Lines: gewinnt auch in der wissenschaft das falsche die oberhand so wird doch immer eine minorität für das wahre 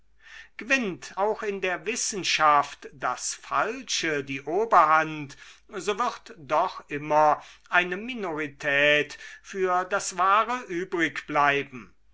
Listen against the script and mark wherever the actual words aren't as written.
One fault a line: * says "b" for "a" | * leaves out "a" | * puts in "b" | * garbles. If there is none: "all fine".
all fine